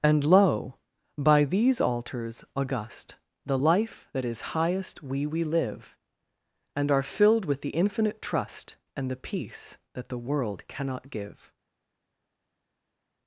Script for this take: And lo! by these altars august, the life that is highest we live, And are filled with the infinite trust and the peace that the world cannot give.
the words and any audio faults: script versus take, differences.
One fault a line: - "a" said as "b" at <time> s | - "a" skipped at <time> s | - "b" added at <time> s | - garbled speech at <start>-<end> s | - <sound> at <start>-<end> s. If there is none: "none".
- "we" added at 5.2 s